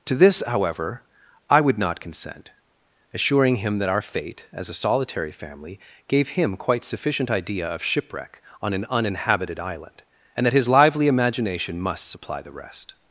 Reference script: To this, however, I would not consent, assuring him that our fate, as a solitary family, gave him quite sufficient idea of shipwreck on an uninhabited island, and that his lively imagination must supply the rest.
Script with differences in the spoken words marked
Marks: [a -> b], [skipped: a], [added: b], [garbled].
To this, however, I would not consent, assuring him that our fate, as a solitary family, gave him quite sufficient idea of shipwreck on an uninhabited island, and that his lively imagination must supply the rest.